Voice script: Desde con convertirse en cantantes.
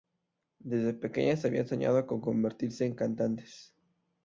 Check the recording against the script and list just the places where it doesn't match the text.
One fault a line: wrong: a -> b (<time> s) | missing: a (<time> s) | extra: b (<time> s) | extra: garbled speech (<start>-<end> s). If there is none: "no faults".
extra: pequeñas habían soñado (0.9 s)